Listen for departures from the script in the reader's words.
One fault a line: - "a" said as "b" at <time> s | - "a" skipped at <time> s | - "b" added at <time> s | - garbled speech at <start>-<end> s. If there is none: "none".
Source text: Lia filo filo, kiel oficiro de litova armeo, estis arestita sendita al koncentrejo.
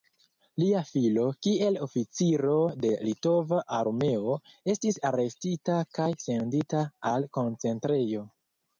- "filo" skipped at 1.2 s
- "kaj" added at 6.0 s